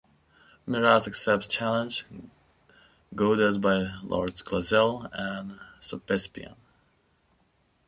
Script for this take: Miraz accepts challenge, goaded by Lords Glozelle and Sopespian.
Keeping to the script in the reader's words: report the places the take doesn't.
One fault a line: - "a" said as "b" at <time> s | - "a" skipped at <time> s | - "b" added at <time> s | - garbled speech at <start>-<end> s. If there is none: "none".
none